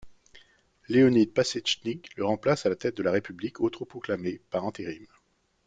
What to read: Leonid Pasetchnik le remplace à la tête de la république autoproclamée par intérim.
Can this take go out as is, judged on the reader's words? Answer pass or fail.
pass